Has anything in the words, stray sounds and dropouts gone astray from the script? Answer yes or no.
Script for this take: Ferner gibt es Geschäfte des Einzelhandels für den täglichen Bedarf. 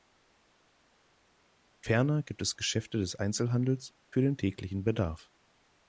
no